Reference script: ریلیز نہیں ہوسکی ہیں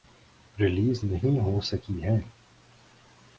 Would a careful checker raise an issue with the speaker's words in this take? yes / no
no